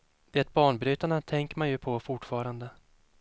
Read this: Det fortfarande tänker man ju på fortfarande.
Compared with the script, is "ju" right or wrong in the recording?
right